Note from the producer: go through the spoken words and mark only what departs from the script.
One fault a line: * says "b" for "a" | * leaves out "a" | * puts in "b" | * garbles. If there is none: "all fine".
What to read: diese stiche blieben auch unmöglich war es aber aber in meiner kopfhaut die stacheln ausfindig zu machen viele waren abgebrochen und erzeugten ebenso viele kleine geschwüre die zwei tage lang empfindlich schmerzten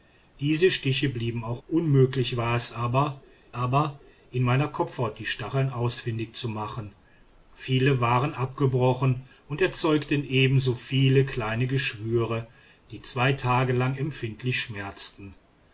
all fine